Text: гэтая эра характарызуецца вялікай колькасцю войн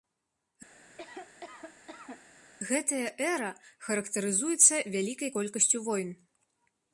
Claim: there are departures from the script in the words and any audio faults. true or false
true